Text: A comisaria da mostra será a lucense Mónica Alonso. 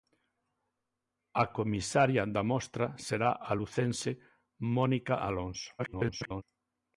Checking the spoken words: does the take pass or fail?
fail